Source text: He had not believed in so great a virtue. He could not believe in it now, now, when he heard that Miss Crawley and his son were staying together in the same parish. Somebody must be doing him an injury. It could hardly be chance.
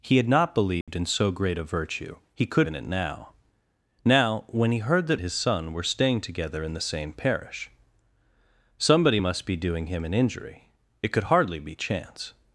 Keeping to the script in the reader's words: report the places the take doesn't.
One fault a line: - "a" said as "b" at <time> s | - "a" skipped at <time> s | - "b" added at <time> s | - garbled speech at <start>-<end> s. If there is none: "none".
- "not believe" skipped at 2.7 s
- "Miss Crawley and" skipped at 5.2 s